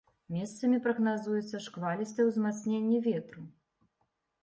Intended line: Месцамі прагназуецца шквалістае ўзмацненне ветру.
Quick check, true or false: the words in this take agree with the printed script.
true